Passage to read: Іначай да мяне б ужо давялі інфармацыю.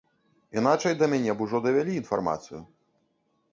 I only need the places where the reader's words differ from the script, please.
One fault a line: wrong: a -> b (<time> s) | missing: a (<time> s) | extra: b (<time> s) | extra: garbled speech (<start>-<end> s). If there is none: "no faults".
no faults